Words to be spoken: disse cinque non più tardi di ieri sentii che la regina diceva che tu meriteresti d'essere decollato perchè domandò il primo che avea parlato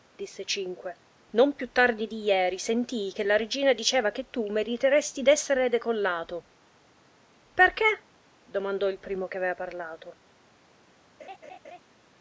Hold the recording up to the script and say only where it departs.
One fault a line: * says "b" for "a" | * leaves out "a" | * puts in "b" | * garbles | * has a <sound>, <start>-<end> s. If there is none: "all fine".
* has a laugh, 11.2-11.8 s